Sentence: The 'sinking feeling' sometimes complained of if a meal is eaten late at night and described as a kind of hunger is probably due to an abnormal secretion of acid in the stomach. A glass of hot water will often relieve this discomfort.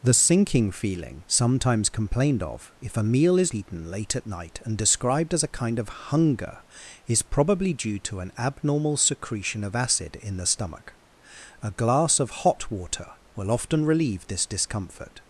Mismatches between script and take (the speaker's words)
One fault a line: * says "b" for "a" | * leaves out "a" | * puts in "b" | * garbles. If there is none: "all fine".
all fine